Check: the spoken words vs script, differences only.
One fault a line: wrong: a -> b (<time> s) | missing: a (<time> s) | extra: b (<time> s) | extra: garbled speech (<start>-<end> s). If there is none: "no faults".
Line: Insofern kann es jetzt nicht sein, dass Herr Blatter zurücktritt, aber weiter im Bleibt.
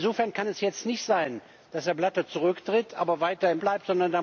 no faults